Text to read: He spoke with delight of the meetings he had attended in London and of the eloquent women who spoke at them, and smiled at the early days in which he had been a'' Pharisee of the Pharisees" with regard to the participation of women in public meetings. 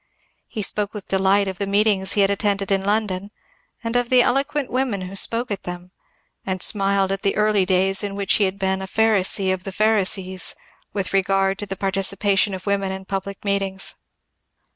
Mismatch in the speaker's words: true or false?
false